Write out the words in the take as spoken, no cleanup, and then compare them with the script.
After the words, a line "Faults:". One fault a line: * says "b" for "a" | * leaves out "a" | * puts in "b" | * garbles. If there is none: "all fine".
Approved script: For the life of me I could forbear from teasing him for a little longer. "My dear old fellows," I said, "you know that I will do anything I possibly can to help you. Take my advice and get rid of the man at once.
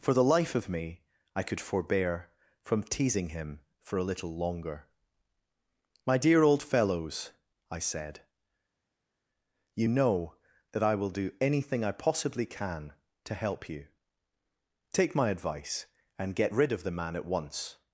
For the life of me I could forbear from teasing him for a little longer. "My dear old fellows," I said, "you know that I will do anything I possibly can to help you. Take my advice and get rid of the man at once.
Faults:
all fine